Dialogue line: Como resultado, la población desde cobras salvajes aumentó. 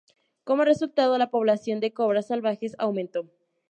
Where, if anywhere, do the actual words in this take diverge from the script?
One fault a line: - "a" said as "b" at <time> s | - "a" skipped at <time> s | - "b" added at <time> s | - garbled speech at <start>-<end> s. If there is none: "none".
- "desde" said as "de" at 1.8 s